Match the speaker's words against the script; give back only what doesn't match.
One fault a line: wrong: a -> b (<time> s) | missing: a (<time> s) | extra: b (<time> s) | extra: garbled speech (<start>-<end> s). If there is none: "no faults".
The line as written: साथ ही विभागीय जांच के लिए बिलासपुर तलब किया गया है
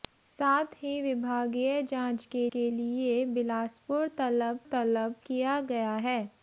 extra: के (2.5 s)
extra: तलब (4.7 s)